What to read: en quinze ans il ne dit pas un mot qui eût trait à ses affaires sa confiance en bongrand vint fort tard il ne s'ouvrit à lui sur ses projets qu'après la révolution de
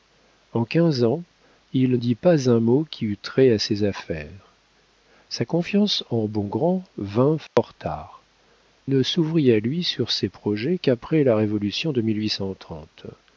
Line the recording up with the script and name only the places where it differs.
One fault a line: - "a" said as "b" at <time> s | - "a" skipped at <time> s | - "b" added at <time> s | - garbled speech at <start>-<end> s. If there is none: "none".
- "ne" skipped at 2.0 s
- "il" skipped at 8.2 s